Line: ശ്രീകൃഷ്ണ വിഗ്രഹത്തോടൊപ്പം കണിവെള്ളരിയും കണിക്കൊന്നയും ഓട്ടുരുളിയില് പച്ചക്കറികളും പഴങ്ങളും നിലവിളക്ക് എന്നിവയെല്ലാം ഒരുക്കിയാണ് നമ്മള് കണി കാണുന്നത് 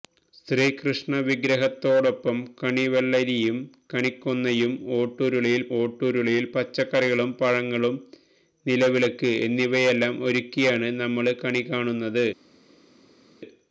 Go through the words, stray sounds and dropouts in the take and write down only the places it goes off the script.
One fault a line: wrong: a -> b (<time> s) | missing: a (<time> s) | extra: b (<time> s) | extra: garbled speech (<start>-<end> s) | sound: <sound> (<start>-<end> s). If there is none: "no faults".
extra: ഓട്ടുരുളിയില് (5.8 s)